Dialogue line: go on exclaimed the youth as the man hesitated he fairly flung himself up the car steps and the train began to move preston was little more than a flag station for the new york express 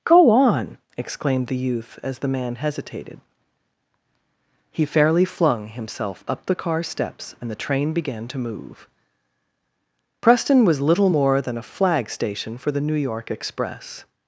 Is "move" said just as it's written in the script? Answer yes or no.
yes